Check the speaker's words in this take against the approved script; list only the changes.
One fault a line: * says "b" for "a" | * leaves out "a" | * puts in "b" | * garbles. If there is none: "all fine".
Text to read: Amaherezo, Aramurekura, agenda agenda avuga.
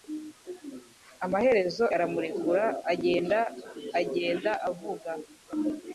all fine